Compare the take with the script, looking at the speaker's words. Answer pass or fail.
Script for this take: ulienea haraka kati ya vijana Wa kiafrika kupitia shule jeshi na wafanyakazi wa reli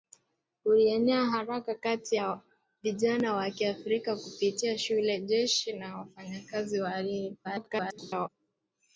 fail